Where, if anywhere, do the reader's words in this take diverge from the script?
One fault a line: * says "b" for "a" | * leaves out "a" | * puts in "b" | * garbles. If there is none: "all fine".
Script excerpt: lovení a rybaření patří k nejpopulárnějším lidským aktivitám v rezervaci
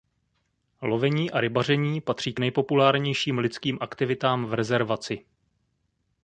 all fine